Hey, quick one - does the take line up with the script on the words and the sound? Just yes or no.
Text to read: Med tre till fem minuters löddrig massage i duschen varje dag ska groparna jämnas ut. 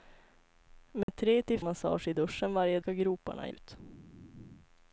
no